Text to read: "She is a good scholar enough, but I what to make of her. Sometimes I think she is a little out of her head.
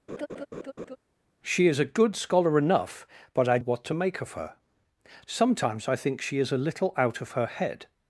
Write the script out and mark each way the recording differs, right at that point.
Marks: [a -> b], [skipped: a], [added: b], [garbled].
"She is a good scholar enough, but I what to make of her. Sometimes I think she is a little out of her head.